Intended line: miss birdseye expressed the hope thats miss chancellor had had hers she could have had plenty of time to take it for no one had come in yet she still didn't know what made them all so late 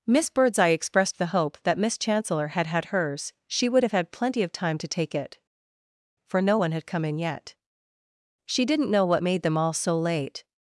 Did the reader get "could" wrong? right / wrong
wrong